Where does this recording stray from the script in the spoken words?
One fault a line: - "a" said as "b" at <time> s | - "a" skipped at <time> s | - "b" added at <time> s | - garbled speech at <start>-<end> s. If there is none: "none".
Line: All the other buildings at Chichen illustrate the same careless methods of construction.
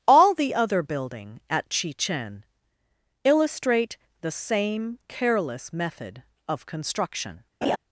- "buildings" said as "building" at 0.8 s
- "methods" said as "method" at 5.7 s